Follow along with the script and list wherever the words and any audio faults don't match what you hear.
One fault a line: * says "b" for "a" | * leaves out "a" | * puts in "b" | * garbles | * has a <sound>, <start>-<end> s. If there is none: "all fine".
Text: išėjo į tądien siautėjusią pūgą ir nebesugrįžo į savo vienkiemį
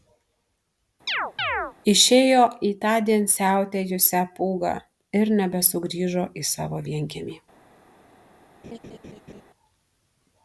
* has a chirp, 1.1-1.7 s
* has a laugh, 8.6-9.4 s